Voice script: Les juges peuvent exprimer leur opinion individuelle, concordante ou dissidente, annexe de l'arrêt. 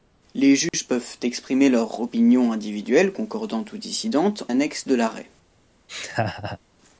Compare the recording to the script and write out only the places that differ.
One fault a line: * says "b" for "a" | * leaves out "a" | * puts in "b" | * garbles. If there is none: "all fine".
all fine